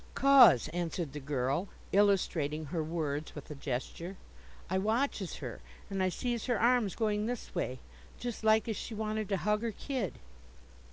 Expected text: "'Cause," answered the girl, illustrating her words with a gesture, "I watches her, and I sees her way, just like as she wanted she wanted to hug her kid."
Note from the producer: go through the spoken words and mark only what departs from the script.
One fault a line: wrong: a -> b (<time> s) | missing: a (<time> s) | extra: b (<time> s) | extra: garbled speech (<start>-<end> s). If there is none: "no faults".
extra: arms going this (6.6 s)
missing: she wanted (9.3 s)